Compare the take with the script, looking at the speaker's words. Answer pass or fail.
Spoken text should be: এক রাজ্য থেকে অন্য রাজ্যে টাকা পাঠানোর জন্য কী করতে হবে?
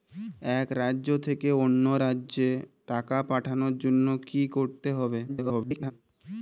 fail